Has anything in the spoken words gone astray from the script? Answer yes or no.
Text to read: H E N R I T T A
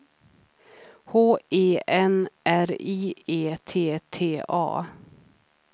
yes